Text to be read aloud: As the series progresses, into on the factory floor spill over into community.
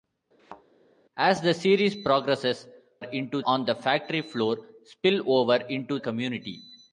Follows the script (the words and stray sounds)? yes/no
no